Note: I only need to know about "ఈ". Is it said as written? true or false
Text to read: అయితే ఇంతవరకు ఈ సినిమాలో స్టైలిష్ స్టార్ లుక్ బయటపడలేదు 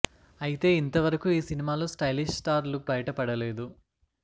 true